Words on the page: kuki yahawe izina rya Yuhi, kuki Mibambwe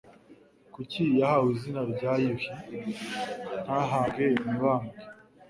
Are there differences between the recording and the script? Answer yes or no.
yes